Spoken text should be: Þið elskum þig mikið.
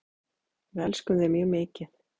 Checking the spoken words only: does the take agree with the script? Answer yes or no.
no